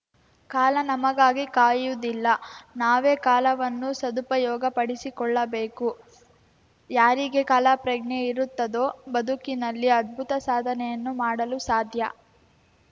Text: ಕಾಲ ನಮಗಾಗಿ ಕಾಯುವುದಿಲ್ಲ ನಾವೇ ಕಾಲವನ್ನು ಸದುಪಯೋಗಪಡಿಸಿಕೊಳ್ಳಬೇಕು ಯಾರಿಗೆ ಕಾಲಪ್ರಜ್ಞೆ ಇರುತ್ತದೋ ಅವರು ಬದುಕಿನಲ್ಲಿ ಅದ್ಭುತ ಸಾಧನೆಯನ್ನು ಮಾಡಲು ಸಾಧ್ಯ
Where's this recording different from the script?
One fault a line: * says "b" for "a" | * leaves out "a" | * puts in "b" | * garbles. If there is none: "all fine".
* leaves out "ಅವರು"